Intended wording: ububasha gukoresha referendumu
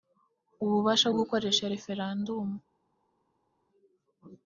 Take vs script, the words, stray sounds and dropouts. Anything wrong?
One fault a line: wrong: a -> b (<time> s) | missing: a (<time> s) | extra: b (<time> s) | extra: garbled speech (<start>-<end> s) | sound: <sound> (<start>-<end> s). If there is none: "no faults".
no faults